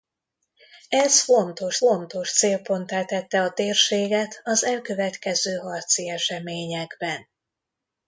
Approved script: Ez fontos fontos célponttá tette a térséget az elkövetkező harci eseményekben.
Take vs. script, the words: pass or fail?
pass